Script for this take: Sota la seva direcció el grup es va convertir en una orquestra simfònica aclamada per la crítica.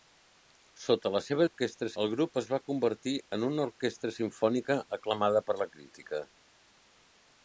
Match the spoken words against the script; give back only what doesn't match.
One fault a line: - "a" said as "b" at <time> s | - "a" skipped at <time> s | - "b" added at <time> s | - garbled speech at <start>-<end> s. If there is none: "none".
- "direcció" said as "orquestra" at 1.4 s